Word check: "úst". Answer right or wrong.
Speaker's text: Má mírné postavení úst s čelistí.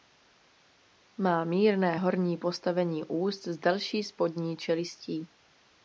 right